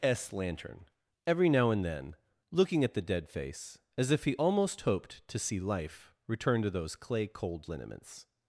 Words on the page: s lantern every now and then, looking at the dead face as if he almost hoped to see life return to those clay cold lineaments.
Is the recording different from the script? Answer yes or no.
no